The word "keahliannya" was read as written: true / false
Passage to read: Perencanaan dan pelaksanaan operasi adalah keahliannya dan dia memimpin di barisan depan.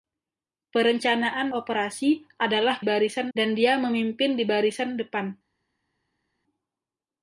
false